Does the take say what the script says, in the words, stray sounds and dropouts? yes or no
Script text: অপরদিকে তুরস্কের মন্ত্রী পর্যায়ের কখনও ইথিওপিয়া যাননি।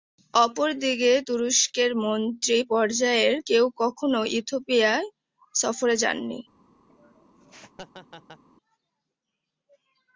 no